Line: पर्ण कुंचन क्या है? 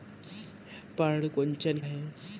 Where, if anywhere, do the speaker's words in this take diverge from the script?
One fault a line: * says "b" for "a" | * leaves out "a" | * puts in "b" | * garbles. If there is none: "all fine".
* leaves out "क्या"